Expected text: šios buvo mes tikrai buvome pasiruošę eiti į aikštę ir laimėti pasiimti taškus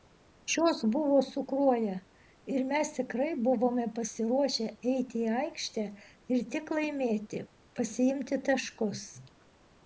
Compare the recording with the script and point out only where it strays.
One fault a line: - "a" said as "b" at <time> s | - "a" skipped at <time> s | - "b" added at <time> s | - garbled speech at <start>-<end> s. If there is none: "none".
- "su kruoja ir" added at 1.2 s
- "tik" added at 6.6 s